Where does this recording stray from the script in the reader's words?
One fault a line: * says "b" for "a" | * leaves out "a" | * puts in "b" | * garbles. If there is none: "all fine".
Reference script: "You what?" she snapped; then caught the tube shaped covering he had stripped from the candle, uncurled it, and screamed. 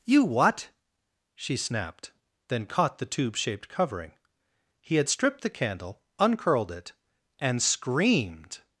* leaves out "from"